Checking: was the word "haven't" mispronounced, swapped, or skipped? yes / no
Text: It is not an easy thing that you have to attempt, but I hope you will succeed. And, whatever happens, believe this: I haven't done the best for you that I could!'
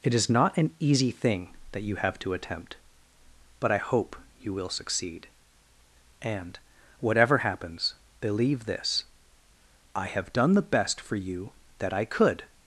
yes